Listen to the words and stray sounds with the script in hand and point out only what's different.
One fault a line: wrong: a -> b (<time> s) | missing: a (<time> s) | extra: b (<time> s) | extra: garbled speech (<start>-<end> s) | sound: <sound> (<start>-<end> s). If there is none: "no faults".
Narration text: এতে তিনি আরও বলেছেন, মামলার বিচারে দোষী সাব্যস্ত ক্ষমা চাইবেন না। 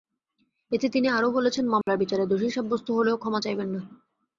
sound: dropout (1.8-1.9 s)
extra: হলেও (2.9 s)